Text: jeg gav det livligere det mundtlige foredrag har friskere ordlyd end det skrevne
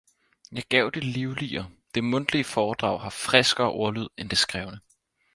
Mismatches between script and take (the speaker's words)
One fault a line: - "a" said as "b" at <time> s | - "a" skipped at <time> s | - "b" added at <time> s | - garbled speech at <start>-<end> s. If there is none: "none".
none